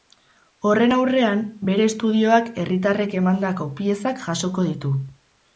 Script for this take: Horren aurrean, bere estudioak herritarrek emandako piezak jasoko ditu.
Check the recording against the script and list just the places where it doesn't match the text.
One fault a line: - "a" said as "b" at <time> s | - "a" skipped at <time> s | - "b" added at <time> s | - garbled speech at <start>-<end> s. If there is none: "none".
none